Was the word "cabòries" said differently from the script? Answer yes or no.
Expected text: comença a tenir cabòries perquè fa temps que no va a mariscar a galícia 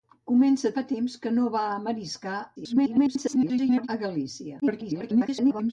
yes